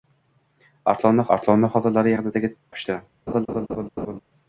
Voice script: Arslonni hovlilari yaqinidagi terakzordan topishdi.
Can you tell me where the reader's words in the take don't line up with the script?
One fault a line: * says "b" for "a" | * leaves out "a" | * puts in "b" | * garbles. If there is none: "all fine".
* puts in "arslonni"
* leaves out "terakzordan"